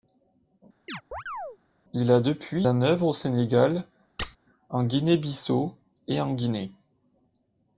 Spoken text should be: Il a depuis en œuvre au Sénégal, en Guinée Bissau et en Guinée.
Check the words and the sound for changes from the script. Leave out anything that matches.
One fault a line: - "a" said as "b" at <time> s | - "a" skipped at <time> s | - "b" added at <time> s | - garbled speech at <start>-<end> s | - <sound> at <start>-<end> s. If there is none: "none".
- chirp at 0.9-1.6 s
- squeak at 4.2-4.4 s